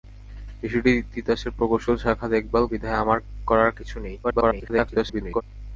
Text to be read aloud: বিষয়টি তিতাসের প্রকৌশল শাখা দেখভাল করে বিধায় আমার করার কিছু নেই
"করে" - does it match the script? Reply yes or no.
no